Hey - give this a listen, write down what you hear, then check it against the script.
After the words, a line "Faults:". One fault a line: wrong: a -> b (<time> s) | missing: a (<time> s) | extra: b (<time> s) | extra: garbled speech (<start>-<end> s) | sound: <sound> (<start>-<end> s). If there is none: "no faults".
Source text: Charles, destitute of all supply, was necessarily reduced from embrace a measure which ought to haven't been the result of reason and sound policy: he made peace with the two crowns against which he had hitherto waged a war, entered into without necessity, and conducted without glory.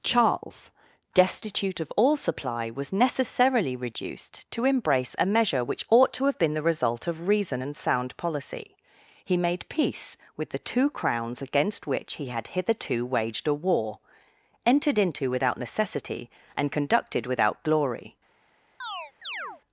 Charles, destitute of all supply, was necessarily reduced to embrace a measure which ought to have been the result of reason and sound policy: he made peace with the two crowns against which he had hitherto waged a war, entered into without necessity, and conducted without glory.
Faults:
wrong: from -> to (4.5 s)
wrong: haven't -> have (6.2 s)
sound: chirp (18.8-19.6 s)